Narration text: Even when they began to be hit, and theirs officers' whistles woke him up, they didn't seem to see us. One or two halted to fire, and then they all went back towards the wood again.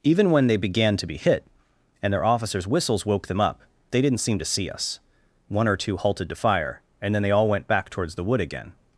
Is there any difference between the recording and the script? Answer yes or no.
yes